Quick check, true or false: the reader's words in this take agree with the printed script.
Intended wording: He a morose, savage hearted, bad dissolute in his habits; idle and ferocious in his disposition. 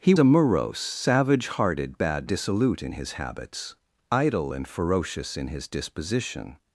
true